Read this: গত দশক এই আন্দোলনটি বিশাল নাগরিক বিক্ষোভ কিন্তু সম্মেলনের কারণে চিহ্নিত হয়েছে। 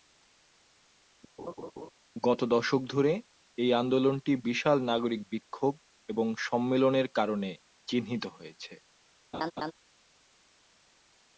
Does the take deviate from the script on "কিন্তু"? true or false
true